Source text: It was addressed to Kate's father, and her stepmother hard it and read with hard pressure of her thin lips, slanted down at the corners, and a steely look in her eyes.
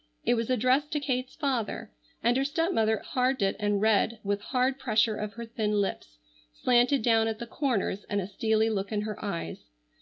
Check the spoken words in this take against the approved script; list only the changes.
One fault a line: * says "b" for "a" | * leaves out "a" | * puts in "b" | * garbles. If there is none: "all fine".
all fine